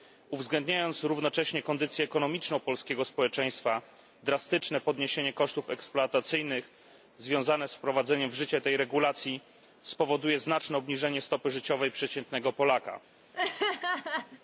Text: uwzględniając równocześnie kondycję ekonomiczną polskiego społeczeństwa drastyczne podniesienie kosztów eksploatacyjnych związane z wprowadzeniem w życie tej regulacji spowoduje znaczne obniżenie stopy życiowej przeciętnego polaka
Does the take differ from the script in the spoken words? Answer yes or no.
no